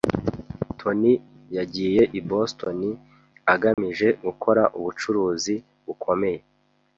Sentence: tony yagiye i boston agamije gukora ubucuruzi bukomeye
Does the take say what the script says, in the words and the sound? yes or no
no